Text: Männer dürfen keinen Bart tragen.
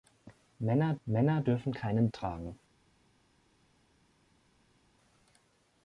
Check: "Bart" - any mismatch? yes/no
yes